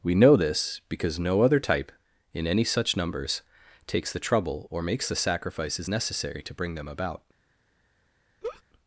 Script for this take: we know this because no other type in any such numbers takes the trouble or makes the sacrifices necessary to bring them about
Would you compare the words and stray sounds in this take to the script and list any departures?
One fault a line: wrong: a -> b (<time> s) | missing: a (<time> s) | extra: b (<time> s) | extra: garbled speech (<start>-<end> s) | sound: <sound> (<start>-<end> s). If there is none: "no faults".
sound: laugh (8.4-8.6 s)